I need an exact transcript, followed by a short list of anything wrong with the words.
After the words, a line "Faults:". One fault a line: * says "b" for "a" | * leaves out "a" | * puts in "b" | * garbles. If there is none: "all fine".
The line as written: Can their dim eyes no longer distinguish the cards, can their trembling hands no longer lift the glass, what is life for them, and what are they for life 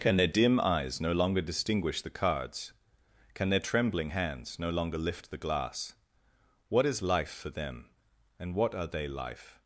Can their dim eyes no longer distinguish the cards, can their trembling hands no longer lift the glass, what is life for them, and what are they life
Faults:
* leaves out "for"